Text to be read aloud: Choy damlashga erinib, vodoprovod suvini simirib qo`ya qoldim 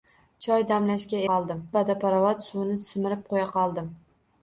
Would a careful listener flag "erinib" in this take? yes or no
yes